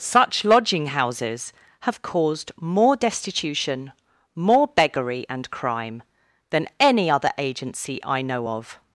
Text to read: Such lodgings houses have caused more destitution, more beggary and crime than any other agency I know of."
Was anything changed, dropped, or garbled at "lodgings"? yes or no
yes